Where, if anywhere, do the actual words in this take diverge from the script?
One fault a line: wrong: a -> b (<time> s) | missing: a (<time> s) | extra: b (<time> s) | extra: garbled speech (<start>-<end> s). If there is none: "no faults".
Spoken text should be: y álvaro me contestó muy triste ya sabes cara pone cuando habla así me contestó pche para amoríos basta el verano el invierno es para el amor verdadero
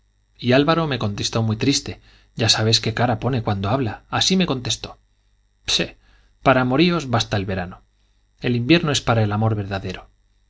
extra: qué (2.8 s)